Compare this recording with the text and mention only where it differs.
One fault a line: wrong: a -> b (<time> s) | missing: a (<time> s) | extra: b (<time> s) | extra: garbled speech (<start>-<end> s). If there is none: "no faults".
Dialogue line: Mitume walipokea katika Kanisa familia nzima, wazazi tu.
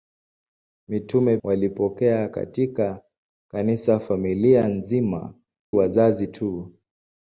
no faults